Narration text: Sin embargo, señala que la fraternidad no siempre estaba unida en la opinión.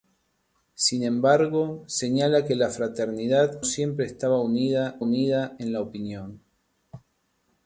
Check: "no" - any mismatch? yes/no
yes